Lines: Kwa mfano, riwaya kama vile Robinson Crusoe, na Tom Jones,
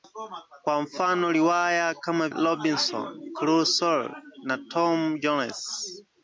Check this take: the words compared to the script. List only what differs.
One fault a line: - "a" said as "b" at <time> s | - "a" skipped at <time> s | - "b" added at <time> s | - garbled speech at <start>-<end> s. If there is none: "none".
- "vile" skipped at 2.3 s